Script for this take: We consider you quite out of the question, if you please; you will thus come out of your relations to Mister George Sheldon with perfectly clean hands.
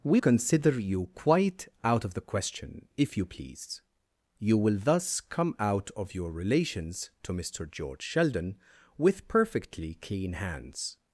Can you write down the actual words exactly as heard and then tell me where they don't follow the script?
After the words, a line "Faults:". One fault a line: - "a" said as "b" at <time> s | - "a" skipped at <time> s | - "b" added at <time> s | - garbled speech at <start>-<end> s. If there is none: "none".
We consider you quite out of the question, if you please; you will thus come out of your relations to Mister George Sheldon with perfectly clean hands.
Faults:
none